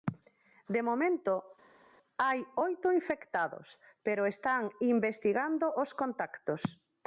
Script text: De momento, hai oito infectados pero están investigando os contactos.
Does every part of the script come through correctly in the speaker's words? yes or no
yes